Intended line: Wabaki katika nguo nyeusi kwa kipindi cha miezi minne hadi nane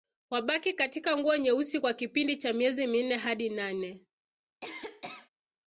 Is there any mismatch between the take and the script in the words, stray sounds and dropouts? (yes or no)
yes